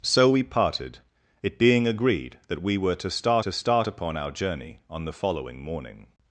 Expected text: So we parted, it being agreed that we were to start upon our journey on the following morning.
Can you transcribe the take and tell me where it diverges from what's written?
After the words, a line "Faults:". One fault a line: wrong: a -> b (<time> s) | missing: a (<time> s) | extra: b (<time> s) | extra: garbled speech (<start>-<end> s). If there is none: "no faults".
So we parted, it being agreed that we were to start to start upon our journey on the following morning.
Faults:
extra: to start (3.4 s)